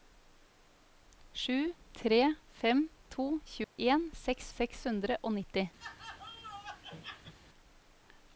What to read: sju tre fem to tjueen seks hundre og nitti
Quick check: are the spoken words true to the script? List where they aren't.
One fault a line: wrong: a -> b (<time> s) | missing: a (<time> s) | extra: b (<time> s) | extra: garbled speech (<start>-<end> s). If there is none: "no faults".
extra: seks (4.5 s)